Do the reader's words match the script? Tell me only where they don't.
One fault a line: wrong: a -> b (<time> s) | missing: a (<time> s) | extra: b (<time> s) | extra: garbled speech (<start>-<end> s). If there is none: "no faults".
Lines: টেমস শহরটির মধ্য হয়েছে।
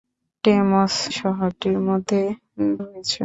no faults